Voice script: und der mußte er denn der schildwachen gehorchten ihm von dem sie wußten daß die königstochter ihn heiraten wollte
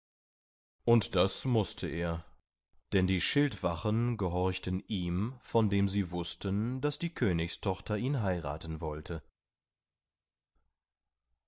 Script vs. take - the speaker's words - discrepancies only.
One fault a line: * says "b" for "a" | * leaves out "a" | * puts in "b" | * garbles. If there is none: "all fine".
* says "das" for "der"
* says "die" for "der"